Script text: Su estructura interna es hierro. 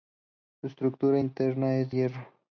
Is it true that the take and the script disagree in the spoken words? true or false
false